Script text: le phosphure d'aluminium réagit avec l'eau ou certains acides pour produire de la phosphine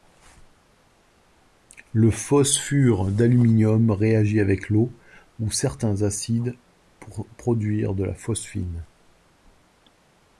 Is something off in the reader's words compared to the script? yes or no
no